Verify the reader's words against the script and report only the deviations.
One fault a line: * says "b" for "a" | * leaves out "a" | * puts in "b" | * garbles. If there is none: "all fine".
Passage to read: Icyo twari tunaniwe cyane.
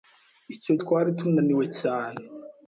all fine